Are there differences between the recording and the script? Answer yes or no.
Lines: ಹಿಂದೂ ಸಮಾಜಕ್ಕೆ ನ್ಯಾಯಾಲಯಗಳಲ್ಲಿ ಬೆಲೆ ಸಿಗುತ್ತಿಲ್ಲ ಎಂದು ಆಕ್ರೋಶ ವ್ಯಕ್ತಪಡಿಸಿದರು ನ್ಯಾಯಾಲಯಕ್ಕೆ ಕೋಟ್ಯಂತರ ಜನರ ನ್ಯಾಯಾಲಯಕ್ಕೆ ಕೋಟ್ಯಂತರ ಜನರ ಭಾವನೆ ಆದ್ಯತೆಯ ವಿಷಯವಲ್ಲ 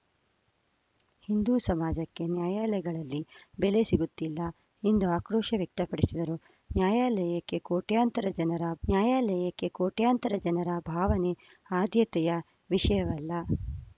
no